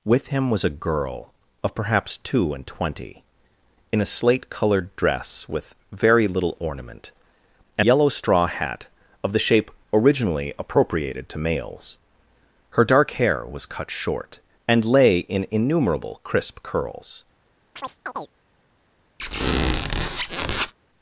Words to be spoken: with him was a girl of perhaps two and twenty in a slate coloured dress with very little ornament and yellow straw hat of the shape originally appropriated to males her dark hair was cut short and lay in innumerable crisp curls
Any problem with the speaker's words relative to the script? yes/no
no